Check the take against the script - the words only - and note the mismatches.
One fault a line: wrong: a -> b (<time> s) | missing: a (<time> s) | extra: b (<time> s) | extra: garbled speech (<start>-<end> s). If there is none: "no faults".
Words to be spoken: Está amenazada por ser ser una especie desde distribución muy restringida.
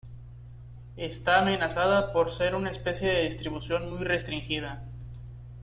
missing: ser (2.5 s)
wrong: desde -> de (3.1 s)